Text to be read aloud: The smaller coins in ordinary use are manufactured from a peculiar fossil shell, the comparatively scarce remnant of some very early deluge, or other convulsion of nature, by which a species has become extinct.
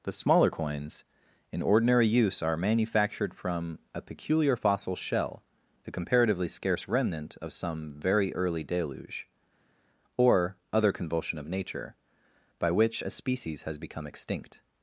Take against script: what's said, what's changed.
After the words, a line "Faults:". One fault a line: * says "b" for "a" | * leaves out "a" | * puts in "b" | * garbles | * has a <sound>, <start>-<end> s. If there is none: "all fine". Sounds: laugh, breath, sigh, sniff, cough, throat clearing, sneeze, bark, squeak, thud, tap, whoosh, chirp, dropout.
The smaller coins in ordinary use are manufactured from a peculiar fossil shell, the comparatively scarce remnant of some very early deluge, or other convulsion of nature, by which a species has become extinct.
Faults:
all fine